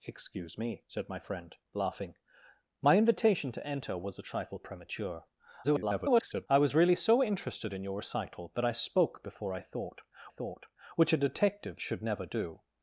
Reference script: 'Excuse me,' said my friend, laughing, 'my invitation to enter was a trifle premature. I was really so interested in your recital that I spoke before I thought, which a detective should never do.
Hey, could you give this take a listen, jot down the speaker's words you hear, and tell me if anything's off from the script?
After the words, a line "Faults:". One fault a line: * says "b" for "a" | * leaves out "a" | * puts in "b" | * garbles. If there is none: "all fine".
'Excuse me,' said my friend, laughing, 'my invitation to enter was a trifle premature. [garbled] I was really so interested in your recital that I spoke before I thought thought, which a detective should never do.
Faults:
* garbles
* puts in "thought"